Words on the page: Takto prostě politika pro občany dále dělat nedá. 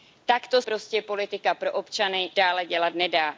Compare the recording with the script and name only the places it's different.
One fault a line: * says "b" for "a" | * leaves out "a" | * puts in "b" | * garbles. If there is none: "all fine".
all fine